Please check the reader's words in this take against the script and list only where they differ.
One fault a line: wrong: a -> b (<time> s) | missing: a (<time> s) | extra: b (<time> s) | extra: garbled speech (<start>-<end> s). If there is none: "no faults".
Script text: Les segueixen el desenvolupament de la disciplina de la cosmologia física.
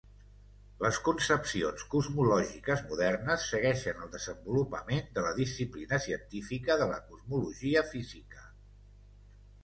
extra: concepcions cosmològiques modernes (1.1 s)
extra: científica (6.1 s)